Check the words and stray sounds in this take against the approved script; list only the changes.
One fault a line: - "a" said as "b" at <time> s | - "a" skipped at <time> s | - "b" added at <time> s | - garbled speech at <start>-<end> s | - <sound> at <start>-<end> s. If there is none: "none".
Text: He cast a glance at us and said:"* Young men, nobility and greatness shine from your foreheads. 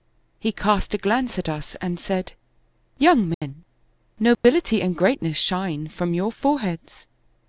- dropout at 3.3-3.4 s
- dropout at 4.3-4.4 s